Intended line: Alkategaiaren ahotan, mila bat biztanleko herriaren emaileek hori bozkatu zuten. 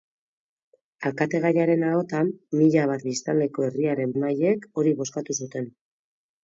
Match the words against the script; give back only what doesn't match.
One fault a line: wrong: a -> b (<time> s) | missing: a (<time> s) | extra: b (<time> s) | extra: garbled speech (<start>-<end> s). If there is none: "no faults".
no faults